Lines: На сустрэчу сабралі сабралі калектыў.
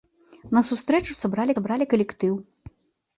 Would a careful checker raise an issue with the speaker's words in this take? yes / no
no